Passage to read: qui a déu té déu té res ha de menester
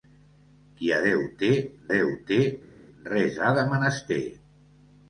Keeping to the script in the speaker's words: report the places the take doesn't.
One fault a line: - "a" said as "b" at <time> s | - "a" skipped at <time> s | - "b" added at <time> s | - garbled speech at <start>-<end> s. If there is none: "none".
none